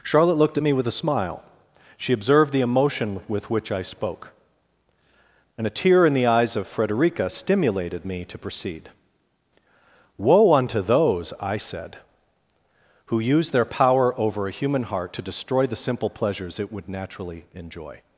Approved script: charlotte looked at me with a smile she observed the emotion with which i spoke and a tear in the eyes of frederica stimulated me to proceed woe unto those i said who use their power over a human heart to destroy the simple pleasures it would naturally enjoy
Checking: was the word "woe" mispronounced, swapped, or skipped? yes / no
no